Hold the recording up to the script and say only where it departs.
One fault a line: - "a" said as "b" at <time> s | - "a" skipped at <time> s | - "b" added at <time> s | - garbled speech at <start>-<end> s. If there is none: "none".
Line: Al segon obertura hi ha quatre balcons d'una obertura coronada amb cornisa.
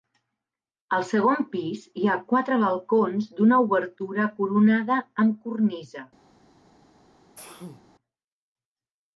- "obertura" said as "pis" at 1.5 s